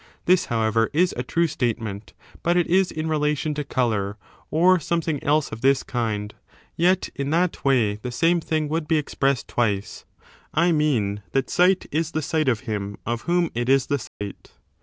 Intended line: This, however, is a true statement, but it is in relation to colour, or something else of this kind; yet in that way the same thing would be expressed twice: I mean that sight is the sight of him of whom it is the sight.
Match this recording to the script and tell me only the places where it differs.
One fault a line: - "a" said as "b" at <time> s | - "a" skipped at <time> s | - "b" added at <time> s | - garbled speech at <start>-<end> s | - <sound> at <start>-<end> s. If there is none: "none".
- dropout at 14.1-14.2 s